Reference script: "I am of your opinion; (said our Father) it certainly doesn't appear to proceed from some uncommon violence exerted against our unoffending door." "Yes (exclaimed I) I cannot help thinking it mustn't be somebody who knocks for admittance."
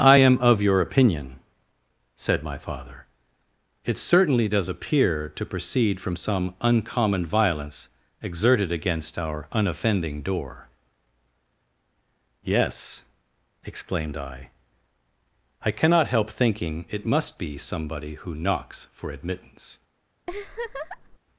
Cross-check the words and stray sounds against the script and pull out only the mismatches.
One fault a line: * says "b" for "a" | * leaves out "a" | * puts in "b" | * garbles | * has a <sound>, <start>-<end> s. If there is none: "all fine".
* says "my" for "our"
* says "does" for "doesn't"
* says "must" for "mustn't"
* has a laugh, 20.3-21.2 s